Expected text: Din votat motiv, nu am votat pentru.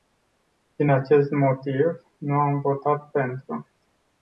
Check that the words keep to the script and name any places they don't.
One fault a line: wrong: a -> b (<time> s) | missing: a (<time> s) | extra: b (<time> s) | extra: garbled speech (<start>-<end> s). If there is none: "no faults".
wrong: votat -> acest (0.9 s)